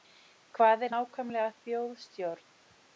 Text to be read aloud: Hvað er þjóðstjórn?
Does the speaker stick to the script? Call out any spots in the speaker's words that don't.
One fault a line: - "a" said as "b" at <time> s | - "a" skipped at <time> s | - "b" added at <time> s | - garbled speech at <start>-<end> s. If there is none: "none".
- "nákvæmlega" added at 0.9 s